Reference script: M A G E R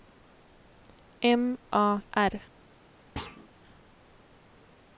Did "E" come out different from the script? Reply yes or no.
yes